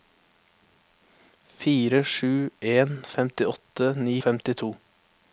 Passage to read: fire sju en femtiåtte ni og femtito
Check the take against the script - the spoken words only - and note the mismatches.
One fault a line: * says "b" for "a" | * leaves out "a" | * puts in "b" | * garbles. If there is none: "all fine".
all fine